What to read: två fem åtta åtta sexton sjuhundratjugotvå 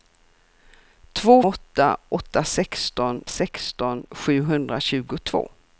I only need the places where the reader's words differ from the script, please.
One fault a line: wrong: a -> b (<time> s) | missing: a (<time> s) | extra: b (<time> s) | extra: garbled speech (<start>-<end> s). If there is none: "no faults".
wrong: fem -> åtta (1.4 s)
wrong: åtta -> sexton (2.4 s)